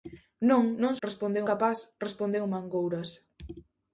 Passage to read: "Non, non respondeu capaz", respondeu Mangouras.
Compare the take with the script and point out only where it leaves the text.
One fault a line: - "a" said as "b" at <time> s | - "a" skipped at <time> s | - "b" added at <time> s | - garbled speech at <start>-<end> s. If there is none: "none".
none